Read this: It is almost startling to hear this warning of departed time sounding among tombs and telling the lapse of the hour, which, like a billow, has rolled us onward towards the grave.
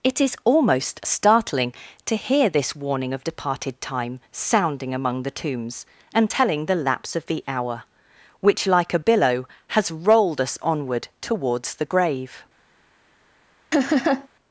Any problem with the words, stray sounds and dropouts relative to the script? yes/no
yes